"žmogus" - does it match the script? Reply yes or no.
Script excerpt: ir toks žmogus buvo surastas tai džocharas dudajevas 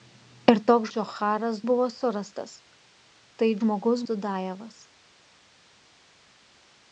no